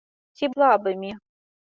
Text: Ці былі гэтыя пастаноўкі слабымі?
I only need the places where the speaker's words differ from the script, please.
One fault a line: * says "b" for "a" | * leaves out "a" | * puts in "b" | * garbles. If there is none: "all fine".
* leaves out "былі гэтыя пастаноўкі"